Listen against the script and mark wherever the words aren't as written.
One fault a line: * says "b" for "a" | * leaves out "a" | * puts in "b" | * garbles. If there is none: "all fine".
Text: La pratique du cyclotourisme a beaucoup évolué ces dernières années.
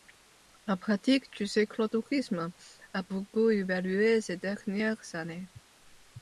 all fine